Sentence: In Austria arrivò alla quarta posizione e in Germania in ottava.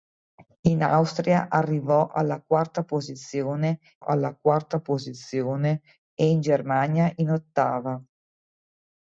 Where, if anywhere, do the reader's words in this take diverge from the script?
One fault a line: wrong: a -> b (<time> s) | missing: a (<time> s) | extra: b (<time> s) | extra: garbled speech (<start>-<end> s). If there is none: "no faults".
extra: alla quarta posizione (4.0 s)